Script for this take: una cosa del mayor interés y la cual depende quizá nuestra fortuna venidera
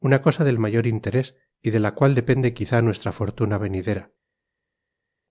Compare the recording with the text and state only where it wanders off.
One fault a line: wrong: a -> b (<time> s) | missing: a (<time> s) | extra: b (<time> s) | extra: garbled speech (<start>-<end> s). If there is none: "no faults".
extra: de (1.7 s)